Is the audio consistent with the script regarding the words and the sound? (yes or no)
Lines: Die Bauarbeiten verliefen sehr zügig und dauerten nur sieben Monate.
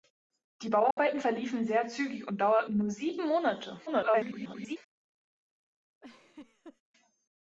no